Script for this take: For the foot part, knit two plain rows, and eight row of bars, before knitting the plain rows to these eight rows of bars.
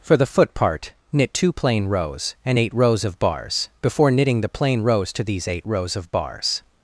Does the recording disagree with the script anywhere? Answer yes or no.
yes